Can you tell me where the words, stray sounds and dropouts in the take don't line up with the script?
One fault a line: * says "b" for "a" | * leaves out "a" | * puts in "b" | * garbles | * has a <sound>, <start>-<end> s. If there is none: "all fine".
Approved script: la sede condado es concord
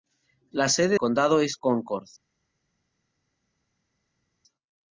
all fine